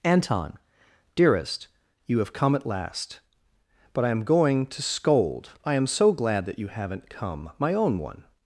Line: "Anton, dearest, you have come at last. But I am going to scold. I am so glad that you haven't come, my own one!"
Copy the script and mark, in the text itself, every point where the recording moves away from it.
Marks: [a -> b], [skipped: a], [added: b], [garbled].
"Anton, dearest, you have come at last. But I am going to scold. I am so glad that you haven't come, my own one!"